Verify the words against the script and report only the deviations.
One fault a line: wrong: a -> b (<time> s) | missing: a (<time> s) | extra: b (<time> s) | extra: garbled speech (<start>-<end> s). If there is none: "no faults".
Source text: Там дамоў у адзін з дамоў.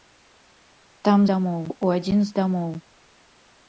no faults